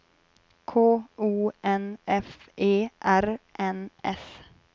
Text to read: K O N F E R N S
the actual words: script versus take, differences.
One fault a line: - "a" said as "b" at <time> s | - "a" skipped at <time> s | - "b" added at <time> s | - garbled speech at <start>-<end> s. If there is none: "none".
none